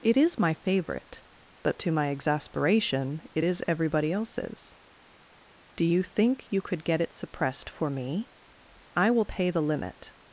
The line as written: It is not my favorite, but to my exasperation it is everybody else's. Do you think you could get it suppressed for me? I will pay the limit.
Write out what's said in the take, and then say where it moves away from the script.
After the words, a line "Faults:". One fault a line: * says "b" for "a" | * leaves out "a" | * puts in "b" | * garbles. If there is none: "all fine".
It is my favorite, but to my exasperation it is everybody else's. Do you think you could get it suppressed for me? I will pay the limit.
Faults:
* leaves out "not"